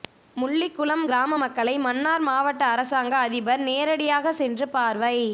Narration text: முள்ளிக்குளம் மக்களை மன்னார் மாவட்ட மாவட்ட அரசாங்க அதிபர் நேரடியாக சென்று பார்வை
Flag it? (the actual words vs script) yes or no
yes